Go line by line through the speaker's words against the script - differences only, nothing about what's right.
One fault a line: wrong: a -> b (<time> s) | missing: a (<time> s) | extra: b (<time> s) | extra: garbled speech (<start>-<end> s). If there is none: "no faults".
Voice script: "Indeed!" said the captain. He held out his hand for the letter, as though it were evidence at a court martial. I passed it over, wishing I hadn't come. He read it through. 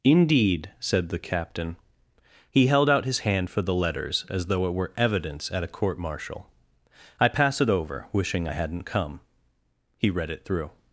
wrong: letter -> letters (3.7 s)
wrong: passed -> pass (7.3 s)